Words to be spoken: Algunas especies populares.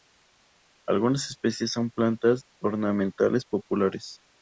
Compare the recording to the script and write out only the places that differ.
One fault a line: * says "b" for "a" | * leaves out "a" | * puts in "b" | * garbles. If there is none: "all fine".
* puts in "son plantas ornamentales"